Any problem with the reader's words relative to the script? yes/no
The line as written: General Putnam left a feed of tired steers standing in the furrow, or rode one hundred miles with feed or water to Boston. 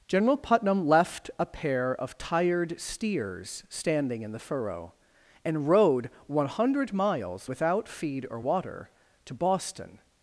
yes